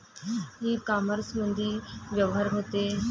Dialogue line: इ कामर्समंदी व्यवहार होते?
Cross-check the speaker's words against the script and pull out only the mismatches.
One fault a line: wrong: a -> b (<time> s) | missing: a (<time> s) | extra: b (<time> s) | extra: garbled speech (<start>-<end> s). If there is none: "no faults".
no faults